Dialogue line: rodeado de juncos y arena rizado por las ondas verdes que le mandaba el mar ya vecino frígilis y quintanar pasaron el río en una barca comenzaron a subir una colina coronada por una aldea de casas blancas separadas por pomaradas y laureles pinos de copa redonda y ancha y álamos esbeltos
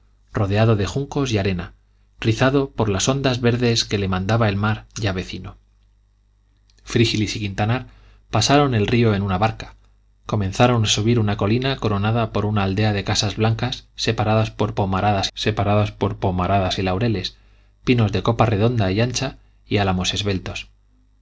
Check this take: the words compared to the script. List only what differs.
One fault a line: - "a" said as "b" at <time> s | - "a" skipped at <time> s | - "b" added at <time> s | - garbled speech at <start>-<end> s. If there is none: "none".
- "separadas por pomaradas" added at 15.3 s